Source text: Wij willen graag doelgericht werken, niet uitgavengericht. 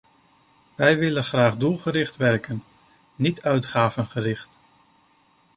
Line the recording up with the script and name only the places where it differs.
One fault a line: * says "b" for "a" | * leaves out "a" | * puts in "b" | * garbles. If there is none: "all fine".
all fine